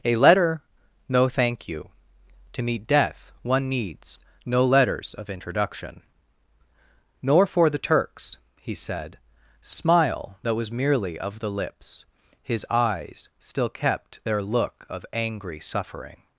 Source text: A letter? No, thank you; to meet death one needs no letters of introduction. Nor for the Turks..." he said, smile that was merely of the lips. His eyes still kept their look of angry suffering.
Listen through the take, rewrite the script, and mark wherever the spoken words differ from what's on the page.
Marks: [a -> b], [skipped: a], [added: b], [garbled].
A letter? No, thank you; to meet death one needs no letters of introduction. Nor for the Turks..." he said, smile that was merely of the lips. His eyes still kept their look of angry suffering.